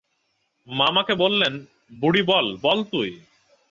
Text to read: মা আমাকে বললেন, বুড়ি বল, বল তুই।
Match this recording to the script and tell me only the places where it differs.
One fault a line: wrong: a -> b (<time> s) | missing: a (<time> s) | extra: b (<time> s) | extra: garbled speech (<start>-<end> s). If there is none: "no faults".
no faults